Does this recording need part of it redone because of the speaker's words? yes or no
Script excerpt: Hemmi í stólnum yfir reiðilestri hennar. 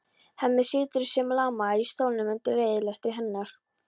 yes